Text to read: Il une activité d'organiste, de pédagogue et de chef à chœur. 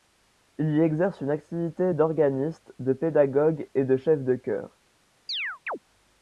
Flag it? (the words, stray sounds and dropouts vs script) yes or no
yes